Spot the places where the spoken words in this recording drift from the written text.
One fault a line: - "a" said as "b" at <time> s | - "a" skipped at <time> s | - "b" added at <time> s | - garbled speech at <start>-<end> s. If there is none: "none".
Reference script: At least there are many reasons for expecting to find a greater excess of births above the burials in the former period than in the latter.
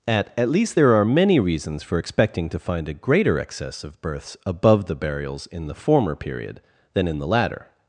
- "at" added at 0.3 s